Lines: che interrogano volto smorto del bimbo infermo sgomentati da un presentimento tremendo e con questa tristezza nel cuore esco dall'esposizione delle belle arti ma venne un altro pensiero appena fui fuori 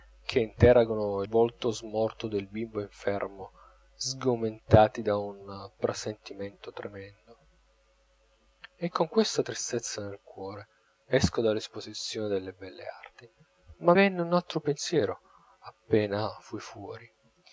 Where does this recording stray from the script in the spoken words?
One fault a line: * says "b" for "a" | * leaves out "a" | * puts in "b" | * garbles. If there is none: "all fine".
all fine